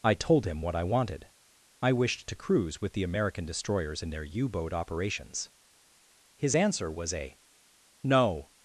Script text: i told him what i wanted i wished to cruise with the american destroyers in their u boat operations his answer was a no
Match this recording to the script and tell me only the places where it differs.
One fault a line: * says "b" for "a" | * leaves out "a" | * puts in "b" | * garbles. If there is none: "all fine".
all fine